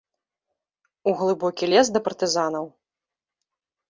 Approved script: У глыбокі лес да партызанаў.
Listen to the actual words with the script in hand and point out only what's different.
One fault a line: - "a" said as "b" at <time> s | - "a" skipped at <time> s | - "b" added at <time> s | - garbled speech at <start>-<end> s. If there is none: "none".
none